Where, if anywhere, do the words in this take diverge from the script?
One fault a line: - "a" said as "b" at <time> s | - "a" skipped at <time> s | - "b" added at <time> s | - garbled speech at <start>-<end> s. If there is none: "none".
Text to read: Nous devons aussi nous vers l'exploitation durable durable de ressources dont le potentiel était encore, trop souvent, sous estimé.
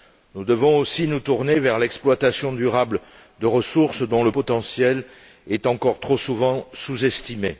- "tourner" added at 1.2 s
- "durable" skipped at 3.0 s
- "était" said as "est" at 5.5 s